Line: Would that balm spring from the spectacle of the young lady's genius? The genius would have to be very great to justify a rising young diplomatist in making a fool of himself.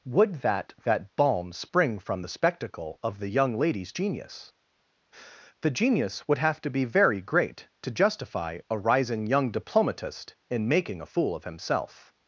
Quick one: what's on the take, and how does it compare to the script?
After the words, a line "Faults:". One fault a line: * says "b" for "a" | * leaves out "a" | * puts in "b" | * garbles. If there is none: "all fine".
Would that that balm spring from the spectacle of the young lady's genius? The genius would have to be very great to justify a rising young diplomatist in making a fool of himself.
Faults:
* puts in "that"